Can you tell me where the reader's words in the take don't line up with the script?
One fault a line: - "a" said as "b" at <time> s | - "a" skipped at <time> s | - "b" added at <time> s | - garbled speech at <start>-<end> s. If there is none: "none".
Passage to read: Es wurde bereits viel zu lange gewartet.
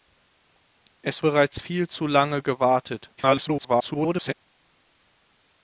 - "wurde" skipped at 1.2 s
- garbled speech at 3.2-4.3 s